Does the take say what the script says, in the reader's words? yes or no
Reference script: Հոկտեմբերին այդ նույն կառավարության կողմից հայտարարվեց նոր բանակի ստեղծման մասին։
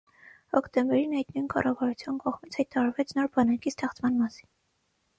yes